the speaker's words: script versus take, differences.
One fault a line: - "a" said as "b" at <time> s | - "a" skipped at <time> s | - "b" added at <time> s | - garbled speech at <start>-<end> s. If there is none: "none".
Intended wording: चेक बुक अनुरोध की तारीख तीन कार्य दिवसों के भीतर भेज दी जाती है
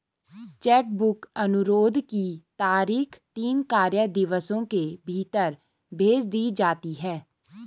none